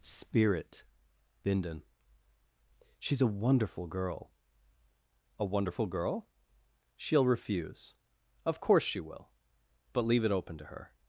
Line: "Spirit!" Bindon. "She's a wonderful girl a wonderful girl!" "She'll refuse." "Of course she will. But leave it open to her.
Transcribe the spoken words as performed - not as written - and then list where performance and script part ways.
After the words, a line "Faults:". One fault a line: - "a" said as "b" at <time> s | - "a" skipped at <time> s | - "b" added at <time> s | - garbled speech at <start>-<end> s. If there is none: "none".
"Spirit!" Bindon. "She's a wonderful girl a wonderful girl!" "She'll refuse." "Of course she will. But leave it open to her.
Faults:
none